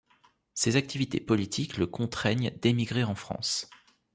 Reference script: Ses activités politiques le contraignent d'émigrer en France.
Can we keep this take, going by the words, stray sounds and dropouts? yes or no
yes